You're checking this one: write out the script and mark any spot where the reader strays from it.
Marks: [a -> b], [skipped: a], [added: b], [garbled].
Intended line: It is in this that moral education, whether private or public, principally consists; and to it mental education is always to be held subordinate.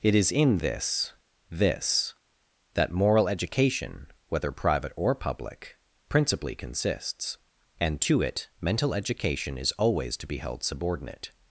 It is in this [added: this] that moral education, whether private or public, principally consists; and to it mental education is always to be held subordinate.